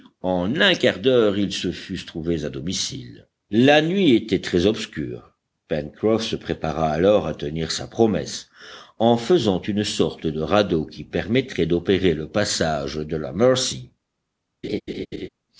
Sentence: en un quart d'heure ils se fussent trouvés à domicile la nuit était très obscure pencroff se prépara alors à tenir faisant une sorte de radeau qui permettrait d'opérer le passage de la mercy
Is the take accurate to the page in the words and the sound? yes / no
no